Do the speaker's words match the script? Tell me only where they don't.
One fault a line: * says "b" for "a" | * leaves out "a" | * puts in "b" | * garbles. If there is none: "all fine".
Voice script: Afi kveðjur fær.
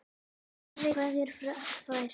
all fine